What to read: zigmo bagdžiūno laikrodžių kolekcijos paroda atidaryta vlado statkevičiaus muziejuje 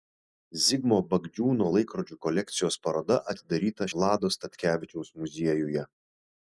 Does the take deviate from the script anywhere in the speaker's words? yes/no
no